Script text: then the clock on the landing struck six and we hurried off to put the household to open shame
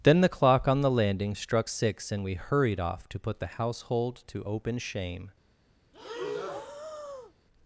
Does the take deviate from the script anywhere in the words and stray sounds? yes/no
yes